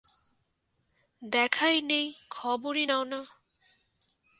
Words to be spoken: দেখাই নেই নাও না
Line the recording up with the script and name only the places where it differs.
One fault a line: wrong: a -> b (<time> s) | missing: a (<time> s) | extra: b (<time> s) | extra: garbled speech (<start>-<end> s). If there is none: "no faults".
extra: খবরই (2.3 s)